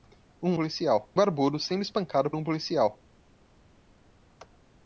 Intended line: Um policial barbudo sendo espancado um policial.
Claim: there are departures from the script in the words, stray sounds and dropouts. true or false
false